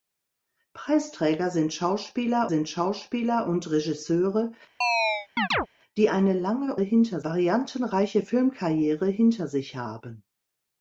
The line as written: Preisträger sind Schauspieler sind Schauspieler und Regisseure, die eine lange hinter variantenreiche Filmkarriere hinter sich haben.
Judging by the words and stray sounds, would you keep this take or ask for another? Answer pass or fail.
fail